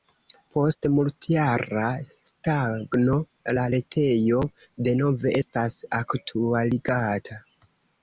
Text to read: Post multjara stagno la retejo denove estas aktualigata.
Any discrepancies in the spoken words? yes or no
no